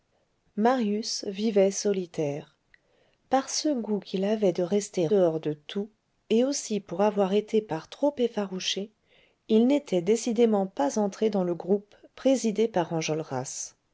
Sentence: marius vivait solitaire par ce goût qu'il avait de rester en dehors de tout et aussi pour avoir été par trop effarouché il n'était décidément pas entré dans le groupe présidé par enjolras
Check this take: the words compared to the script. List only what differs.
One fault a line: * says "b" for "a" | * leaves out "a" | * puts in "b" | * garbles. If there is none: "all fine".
* leaves out "en"